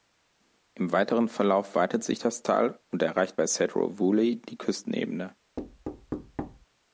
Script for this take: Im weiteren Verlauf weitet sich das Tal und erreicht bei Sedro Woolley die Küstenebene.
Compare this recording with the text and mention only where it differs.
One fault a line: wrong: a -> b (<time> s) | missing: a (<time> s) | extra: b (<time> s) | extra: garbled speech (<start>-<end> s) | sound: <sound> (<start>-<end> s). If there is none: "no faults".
sound: thud (5.6-6.7 s)